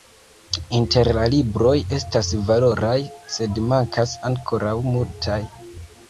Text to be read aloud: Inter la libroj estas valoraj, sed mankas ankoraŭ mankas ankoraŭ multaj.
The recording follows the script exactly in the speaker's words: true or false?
false